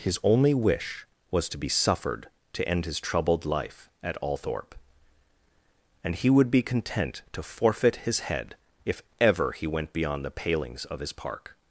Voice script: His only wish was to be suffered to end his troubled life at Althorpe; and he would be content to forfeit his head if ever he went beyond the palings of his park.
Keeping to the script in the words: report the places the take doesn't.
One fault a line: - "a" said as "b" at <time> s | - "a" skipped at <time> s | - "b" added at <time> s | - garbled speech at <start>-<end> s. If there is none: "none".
none